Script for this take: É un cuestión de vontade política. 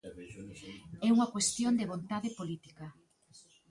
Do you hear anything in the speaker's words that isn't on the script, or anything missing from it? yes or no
yes